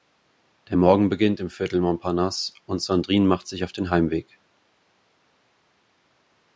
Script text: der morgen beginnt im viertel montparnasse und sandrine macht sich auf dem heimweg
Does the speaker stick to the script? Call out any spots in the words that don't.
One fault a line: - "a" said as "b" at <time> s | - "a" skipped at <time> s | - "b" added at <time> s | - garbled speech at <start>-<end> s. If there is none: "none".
- "dem" said as "den" at 3.7 s